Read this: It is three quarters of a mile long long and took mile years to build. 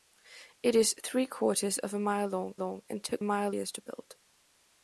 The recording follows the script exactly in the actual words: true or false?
true